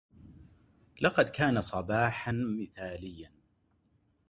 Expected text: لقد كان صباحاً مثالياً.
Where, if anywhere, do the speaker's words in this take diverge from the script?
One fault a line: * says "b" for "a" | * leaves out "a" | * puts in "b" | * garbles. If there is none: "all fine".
all fine